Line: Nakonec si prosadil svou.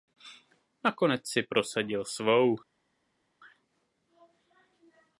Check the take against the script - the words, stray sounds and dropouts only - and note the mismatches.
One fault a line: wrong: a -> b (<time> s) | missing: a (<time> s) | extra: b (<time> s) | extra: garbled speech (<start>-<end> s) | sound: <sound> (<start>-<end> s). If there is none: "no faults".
no faults